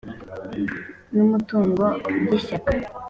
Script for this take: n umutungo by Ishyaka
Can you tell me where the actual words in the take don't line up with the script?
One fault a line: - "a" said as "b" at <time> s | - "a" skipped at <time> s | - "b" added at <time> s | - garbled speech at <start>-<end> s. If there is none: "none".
none